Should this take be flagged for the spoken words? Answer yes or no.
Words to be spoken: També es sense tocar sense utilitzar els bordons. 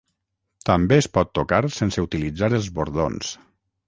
yes